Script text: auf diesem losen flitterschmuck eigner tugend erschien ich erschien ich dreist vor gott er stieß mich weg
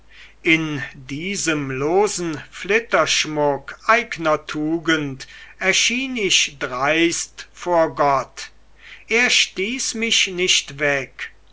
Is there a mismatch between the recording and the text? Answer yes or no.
yes